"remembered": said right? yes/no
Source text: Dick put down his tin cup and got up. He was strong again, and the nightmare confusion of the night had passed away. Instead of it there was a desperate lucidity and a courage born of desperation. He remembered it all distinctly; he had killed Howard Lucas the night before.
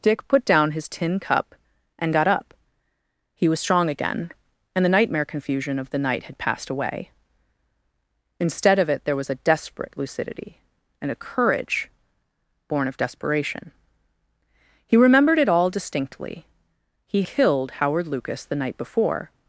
yes